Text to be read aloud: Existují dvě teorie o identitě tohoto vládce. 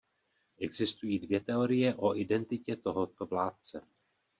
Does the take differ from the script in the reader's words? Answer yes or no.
no